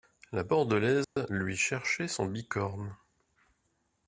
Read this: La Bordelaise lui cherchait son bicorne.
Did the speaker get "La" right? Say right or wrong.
right